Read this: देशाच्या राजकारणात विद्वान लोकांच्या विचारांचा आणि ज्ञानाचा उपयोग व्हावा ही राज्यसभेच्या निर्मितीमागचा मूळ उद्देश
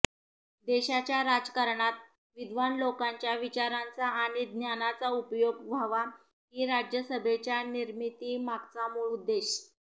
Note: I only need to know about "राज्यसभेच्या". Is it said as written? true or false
true